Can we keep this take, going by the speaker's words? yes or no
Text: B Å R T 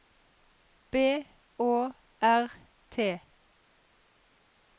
yes